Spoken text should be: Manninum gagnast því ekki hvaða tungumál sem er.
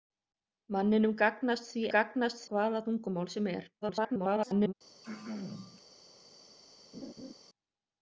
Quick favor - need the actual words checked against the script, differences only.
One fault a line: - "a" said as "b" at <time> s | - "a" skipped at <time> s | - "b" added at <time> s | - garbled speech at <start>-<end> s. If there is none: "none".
- "ekki" said as "gagnast" at 1.9 s
- garbled speech at 3.8-4.7 s